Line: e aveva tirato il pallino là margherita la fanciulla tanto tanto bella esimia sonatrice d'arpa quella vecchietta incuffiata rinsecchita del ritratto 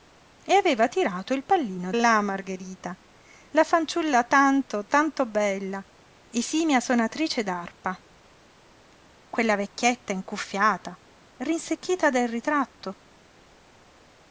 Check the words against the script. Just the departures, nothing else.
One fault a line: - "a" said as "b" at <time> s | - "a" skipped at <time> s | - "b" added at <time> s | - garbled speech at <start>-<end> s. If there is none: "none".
none